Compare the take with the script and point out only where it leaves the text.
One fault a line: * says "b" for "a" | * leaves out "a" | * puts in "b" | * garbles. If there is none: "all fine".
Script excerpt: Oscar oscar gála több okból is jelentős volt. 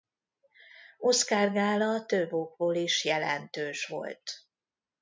* leaves out "oscar"